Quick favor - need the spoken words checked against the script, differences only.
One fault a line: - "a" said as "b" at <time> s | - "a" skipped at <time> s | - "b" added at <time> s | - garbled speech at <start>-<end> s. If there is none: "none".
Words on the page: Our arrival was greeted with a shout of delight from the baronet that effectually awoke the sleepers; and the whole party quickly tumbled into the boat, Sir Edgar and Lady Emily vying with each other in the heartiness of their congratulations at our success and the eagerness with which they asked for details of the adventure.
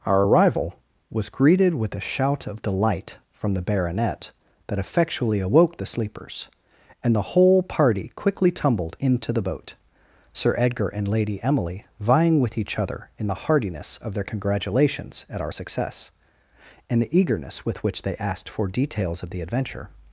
none